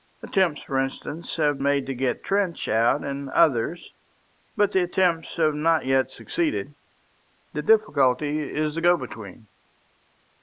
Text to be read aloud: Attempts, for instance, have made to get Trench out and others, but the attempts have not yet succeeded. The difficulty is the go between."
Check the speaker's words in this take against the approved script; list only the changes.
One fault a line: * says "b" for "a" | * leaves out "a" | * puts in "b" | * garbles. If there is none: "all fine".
all fine